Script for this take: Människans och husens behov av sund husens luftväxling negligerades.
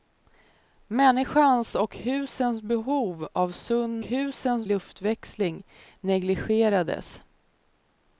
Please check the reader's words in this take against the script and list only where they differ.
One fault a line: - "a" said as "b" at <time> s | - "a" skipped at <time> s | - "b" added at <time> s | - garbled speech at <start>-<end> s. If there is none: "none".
none